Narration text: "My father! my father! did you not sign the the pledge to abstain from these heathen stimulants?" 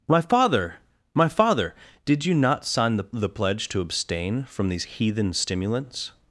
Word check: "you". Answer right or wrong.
right